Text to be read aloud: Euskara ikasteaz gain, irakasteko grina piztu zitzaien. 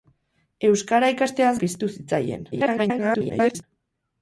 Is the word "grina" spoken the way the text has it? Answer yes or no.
no